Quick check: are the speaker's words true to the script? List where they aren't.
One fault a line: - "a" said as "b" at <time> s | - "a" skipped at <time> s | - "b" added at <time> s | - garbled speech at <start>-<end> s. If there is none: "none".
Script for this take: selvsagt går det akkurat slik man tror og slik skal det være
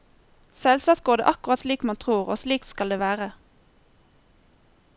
none